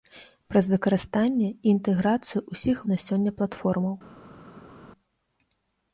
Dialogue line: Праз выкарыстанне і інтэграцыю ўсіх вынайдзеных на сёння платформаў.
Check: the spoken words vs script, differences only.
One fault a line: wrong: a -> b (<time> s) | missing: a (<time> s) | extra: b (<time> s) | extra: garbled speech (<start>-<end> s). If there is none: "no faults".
missing: вынайдзеных (2.8 s)